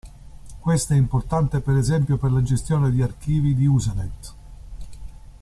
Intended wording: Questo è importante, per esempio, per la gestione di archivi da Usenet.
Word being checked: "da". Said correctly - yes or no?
no